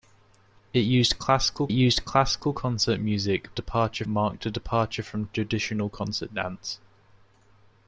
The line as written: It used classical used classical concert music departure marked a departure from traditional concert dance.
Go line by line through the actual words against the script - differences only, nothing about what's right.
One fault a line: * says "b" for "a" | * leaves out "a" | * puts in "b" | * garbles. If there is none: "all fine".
all fine